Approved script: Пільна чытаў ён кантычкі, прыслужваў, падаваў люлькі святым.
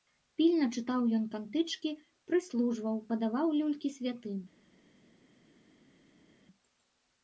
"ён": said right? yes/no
yes